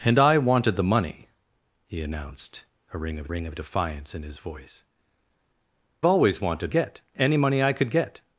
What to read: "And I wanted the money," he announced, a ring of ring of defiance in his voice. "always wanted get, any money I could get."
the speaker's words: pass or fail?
pass